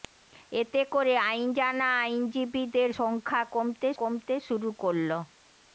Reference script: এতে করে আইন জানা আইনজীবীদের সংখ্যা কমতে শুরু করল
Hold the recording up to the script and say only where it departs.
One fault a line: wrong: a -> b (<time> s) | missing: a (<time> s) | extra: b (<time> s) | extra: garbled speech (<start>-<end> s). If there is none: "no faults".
extra: কমতে (4.0 s)